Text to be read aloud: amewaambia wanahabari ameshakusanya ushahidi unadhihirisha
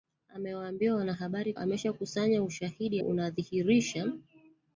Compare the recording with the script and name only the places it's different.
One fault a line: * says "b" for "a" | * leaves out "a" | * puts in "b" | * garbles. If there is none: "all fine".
all fine